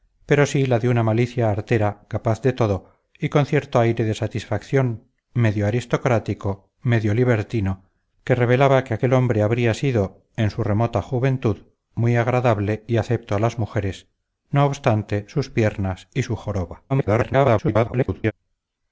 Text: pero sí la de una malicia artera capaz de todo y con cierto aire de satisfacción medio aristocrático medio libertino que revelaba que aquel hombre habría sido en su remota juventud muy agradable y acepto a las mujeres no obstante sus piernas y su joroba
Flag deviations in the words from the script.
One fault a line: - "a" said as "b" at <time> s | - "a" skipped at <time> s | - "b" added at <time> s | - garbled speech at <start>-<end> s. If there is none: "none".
- garbled speech at 16.9-18.3 s